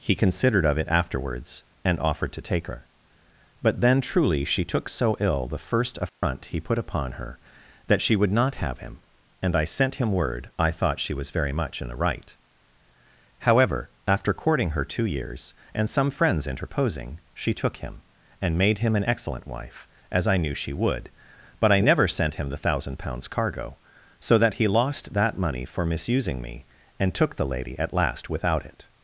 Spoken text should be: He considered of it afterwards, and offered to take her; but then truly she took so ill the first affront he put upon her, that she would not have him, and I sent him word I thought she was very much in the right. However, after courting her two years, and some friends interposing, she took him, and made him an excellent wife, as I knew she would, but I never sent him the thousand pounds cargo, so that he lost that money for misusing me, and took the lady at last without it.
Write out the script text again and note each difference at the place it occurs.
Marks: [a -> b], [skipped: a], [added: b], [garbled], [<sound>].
He considered of it afterwards, and offered to take her; but then truly she took so ill the first affront [dropout] he put upon her, that she would not have him, and I sent him word I thought she was very much in the right. However, after courting her two years, and some friends interposing, she took him, and made him an excellent wife, as I knew she would, but I never sent him the thousand pounds cargo, so that he lost that money for misusing me, and took the lady at last without it.